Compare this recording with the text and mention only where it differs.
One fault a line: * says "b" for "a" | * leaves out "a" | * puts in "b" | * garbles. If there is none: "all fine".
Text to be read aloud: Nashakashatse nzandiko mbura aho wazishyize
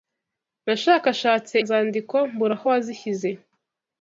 all fine